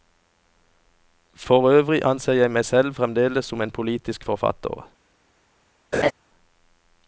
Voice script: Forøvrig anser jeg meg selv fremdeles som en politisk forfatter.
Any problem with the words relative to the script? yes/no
no